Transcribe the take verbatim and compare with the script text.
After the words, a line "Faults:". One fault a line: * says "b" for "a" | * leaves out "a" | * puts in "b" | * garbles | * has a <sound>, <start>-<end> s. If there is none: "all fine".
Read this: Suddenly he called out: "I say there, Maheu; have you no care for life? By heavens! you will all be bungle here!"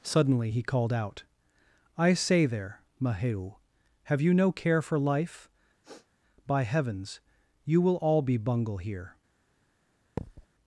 Suddenly he called out: "I say there, Maheu; have you no care for life? By heavens! you will all be bungle here!"
Faults:
* has a sniff, 5.8-6.1 s
* has a thud, 10.2-10.5 s